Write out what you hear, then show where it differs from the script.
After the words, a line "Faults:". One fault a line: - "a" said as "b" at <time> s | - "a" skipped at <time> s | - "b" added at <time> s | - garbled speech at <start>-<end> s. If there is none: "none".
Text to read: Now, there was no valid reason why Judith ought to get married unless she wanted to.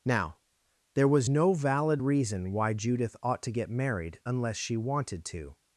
Now, there was no valid reason why Judith ought to get married unless she wanted to.
Faults:
none